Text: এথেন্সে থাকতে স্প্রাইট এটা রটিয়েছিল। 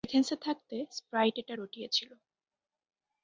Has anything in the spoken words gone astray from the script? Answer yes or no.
no